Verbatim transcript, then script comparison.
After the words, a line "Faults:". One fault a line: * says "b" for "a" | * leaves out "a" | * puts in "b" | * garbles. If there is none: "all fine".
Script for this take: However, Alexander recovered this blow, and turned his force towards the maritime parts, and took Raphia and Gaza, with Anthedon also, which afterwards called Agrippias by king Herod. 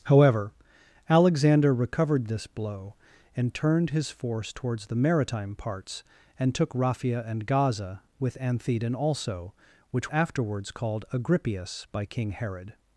However, Alexander recovered this blow, and turned his force towards the maritime parts, and took Raphia and Gaza, with Anthedon also, which afterwards called Agrippias by king Herod.
Faults:
all fine